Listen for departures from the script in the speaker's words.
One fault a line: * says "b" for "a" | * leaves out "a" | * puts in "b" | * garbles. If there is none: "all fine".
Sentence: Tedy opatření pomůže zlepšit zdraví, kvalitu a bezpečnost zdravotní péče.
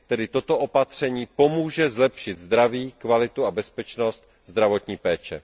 * puts in "toto"